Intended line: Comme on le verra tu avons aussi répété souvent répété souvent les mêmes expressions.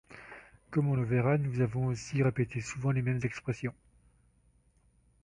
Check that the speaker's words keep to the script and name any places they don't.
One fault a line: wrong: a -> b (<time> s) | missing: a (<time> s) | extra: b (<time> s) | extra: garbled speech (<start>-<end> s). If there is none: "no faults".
wrong: tu -> nous (1.4 s)
missing: répété souvent (2.9 s)